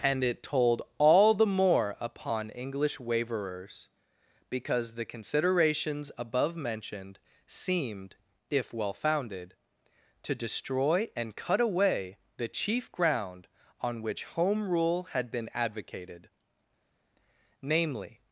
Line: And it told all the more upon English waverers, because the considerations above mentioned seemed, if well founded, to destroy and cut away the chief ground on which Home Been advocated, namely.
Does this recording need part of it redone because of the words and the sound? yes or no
yes